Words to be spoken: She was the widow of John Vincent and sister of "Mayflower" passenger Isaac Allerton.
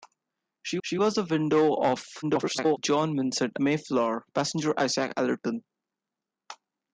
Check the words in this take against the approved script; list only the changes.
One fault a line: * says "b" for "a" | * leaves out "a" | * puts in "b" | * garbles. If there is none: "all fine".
* puts in "she"
* garbles
* leaves out "and sister of"